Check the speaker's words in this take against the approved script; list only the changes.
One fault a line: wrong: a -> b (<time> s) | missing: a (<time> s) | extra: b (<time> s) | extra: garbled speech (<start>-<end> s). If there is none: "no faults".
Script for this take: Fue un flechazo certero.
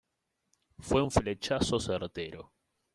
no faults